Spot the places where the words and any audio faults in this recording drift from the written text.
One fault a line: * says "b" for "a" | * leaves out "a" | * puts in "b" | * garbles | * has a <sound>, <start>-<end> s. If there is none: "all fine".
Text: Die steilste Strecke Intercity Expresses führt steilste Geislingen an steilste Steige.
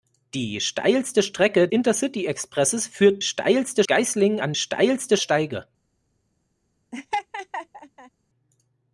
* has a laugh, 6.9-8.1 s